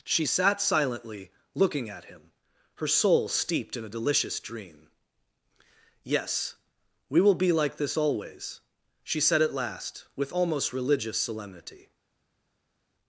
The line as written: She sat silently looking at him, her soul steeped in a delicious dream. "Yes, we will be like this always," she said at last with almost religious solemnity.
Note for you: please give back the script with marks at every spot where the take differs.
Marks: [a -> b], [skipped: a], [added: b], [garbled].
She sat silently looking at him, her soul steeped in a delicious dream. "Yes, we will be like this always," she said at last with almost religious solemnity.